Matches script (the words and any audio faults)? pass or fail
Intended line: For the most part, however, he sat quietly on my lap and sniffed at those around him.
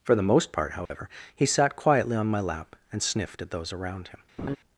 fail